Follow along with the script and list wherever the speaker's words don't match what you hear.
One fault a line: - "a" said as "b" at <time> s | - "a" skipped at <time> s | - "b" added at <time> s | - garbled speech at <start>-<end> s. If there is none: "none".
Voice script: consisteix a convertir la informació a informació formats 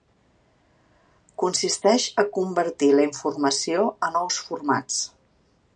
- "informació" said as "nous" at 4.2 s